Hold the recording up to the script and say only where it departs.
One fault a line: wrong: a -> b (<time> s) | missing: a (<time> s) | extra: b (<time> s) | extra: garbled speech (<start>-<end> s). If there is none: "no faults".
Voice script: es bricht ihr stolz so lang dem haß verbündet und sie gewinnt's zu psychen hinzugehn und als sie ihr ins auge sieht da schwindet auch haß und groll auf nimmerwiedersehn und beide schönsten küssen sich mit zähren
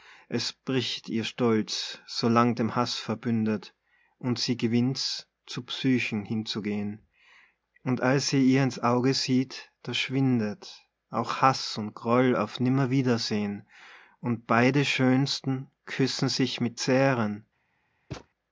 no faults